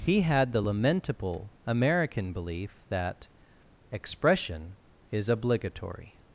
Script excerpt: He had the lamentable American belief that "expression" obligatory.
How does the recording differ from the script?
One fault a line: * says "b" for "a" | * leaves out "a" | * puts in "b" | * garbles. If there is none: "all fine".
* puts in "is"